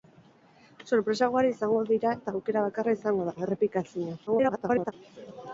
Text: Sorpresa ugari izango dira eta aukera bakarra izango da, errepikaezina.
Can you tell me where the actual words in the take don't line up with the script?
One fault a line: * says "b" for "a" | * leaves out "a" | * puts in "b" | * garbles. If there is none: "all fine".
* garbles